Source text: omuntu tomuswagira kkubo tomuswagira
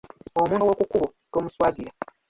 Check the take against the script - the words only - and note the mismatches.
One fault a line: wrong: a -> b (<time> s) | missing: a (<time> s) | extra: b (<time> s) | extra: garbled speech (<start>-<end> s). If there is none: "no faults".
wrong: tomuswagira -> ow'oku (0.6 s)